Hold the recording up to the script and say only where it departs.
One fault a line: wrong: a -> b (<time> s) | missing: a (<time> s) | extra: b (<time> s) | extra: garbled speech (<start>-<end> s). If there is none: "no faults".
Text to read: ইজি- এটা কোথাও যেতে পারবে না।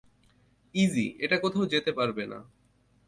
no faults